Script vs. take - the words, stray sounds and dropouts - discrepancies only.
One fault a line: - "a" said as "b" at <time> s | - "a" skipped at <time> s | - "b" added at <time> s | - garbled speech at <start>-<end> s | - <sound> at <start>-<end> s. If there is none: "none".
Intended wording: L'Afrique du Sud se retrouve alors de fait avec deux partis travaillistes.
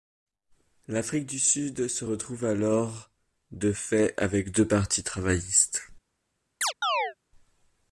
- chirp at 6.6-7.1 s